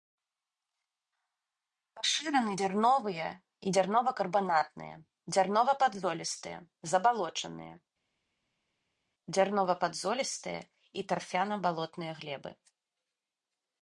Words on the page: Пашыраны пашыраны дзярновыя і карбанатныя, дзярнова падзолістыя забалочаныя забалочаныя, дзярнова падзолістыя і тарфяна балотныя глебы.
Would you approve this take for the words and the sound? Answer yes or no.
no